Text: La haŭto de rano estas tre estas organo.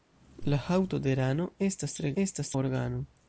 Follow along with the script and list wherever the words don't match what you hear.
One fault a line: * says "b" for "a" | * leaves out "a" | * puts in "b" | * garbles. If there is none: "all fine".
all fine